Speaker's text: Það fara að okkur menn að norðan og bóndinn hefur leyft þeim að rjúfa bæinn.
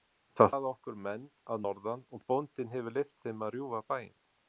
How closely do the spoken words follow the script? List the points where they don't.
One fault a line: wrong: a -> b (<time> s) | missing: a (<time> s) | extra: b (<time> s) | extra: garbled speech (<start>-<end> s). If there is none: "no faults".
missing: fara (0.5 s)